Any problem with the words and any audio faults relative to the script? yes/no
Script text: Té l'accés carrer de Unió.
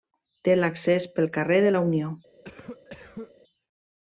yes